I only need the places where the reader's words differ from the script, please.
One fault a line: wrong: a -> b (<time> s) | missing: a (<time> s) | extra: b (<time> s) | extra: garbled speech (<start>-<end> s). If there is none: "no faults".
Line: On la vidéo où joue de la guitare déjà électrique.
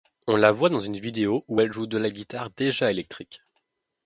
extra: voit dans une (0.5 s)
extra: elle (1.6 s)